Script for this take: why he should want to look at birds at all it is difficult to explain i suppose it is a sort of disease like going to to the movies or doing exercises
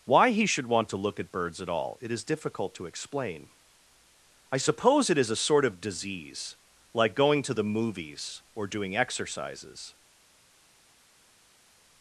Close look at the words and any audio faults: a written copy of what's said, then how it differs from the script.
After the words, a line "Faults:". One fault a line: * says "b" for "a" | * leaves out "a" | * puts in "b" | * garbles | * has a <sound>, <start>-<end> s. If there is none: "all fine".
why he should want to look at birds at all it is difficult to explain i suppose it is a sort of disease like going to the movies or doing exercises
Faults:
* leaves out "to"